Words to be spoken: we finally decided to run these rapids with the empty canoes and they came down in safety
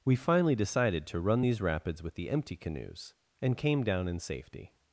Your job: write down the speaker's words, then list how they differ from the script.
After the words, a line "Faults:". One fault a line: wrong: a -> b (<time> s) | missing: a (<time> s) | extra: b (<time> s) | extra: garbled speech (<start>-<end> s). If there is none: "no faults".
we finally decided to run these rapids with the empty canoes and came down in safety
Faults:
missing: they (3.6 s)